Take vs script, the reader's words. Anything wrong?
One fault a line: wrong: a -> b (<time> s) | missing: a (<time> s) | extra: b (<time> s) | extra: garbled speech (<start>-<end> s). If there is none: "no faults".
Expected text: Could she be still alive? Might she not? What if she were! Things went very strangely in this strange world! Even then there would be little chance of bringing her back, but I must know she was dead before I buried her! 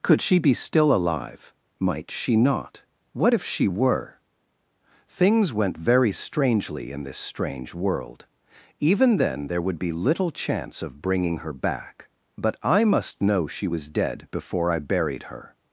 no faults